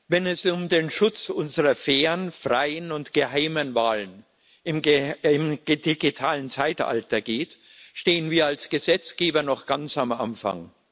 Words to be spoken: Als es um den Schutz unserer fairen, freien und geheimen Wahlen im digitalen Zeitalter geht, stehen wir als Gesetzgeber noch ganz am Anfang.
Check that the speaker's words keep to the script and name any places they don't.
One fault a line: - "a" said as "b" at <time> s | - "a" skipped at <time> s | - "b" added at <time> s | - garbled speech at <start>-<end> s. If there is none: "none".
- "Als" said as "Wenn" at 0.1 s